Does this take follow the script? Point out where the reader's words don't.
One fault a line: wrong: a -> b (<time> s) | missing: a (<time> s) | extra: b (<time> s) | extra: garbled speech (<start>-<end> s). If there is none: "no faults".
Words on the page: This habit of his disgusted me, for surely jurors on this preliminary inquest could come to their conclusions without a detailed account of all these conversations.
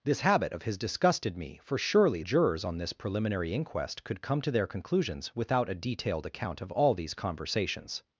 no faults